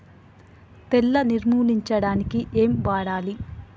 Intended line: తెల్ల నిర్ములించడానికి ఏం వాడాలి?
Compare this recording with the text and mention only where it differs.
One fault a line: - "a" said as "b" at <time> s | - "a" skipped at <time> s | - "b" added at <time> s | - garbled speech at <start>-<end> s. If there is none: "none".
none